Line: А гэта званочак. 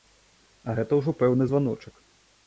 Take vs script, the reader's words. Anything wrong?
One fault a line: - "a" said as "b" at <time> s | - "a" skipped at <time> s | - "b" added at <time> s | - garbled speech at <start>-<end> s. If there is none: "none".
- "ўжо пэўны" added at 1.0 s